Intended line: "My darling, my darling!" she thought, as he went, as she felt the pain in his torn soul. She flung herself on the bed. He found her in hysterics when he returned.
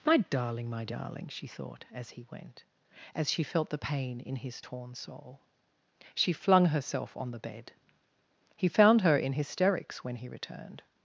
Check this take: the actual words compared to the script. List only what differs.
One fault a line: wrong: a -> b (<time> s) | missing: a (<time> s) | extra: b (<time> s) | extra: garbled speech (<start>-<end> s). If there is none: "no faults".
no faults